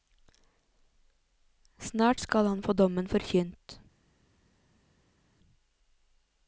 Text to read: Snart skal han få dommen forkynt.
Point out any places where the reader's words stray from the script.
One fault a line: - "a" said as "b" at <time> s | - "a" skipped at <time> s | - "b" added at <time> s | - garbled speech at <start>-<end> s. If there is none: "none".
none